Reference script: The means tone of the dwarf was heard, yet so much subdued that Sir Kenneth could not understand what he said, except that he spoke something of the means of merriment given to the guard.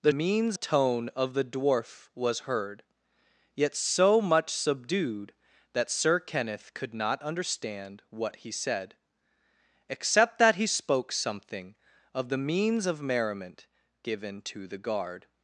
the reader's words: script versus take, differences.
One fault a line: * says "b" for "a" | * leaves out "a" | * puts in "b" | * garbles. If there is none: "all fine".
all fine